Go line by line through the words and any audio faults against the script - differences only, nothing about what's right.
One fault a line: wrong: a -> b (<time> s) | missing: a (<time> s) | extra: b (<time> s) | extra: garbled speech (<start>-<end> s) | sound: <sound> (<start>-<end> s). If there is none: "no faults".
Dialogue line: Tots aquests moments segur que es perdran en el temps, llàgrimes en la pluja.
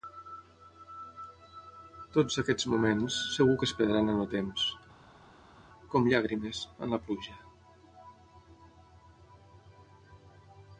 extra: com (6.0 s)